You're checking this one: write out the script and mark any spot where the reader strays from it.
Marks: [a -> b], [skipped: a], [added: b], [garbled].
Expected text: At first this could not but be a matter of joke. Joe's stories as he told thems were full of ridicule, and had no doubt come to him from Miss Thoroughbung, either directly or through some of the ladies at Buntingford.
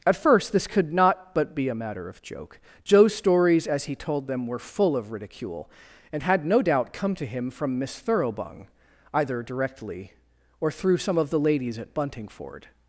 At first this could not but be a matter of joke. Joe's stories as he told [thems -> them] were full of ridicule, and had no doubt come to him from Miss Thoroughbung, either directly or through some of the ladies at Buntingford.